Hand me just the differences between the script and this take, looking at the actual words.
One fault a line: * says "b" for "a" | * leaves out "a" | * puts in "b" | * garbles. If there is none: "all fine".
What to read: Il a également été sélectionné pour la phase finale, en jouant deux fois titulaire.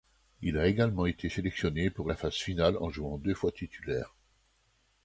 all fine